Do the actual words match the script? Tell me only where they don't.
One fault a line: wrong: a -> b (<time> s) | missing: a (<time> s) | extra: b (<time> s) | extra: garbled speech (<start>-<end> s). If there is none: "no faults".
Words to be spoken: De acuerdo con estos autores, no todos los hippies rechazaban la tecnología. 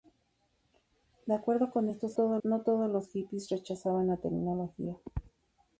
wrong: autores -> todos (2.1 s)